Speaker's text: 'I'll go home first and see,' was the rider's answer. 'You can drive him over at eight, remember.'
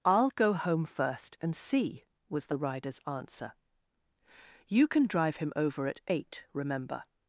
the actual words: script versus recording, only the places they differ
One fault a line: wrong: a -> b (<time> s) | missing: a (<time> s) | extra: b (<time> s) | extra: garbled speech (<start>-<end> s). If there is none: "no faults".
no faults